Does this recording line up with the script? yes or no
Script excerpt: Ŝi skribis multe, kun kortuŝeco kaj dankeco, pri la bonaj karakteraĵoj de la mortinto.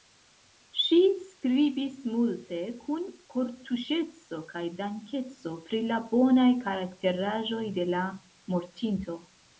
yes